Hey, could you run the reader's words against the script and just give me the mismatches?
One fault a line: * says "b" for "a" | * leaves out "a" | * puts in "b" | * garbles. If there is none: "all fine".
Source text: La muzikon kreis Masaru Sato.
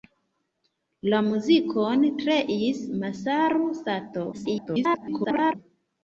* garbles